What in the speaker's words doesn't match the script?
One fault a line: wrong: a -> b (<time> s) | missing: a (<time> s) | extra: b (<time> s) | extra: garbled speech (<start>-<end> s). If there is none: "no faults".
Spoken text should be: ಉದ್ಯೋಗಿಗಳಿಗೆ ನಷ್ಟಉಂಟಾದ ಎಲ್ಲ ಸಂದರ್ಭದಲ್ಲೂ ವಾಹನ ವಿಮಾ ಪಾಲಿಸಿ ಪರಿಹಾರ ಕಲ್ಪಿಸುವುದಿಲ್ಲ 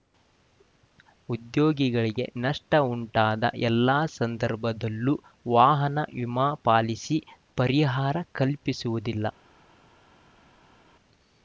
no faults